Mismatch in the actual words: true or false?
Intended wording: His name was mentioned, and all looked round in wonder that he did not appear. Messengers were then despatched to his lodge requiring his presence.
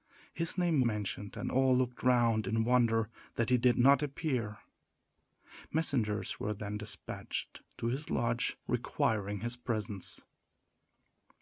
true